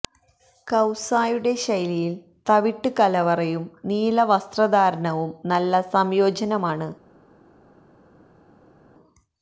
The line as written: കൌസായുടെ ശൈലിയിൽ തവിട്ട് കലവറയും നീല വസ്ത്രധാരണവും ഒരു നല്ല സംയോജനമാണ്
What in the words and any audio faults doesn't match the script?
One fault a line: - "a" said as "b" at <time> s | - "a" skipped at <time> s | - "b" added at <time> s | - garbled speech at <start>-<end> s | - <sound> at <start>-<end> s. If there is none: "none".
- "ഒരു" skipped at 5.3 s